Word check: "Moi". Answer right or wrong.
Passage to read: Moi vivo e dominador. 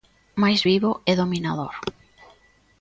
wrong